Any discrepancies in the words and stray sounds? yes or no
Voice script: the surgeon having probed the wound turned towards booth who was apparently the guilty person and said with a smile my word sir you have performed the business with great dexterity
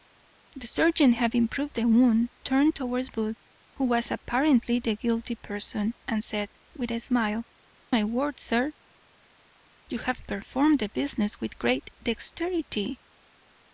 no